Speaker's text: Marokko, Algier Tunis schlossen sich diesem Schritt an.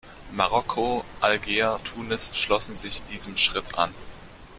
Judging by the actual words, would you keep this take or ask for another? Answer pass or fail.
pass